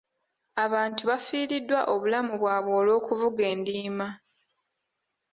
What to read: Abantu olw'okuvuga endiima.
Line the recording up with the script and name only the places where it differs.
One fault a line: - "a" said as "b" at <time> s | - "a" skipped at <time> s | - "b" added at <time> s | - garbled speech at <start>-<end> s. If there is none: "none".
- "bafiiriddwa obulamu bwabwe" added at 1.1 s